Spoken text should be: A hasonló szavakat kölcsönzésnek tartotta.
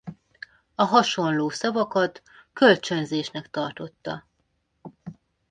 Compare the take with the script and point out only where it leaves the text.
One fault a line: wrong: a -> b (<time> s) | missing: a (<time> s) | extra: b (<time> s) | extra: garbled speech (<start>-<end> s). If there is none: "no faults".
no faults